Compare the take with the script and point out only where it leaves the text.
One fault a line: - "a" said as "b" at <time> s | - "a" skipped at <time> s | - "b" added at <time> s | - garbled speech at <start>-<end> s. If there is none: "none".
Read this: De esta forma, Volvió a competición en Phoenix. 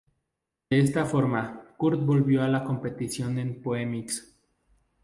- "Kurt" added at 1.8 s
- "la" added at 2.5 s